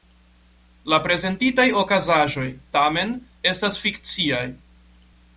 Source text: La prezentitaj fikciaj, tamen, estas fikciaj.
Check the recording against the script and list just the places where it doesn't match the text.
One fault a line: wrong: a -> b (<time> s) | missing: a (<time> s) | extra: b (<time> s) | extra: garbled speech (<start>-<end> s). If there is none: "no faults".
wrong: fikciaj -> okazaĵoj (1.8 s)